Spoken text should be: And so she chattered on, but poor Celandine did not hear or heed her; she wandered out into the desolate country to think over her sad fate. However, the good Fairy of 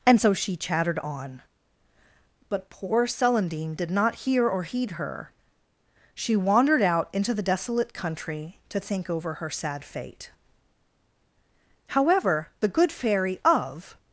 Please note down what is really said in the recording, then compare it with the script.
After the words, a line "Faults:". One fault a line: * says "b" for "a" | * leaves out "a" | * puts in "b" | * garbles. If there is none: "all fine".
And so she chattered on, but poor Celandine did not hear or heed her; she wandered out into the desolate country to think over her sad fate. However, the good Fairy of
Faults:
all fine